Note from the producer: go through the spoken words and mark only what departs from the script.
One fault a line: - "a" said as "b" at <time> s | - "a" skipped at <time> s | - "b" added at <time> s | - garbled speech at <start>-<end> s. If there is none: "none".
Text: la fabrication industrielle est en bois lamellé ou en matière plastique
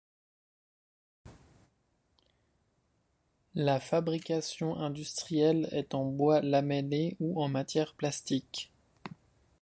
none